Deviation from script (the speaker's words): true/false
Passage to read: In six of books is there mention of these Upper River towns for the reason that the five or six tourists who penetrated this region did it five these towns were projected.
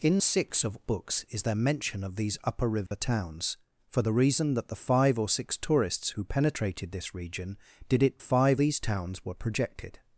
false